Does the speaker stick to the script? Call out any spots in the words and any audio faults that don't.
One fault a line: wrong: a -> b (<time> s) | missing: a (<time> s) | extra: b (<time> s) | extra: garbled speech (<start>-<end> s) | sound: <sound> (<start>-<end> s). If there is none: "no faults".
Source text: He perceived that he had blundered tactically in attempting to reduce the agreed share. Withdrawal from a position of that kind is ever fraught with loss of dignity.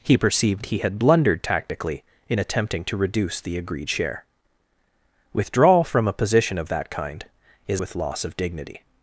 missing: that (0.6 s)
missing: ever fraught (7.8 s)